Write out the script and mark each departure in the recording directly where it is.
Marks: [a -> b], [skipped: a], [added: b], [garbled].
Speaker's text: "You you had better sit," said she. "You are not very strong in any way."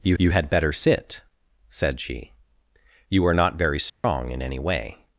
"You you had better sit," said she. "You are not very strong in any way."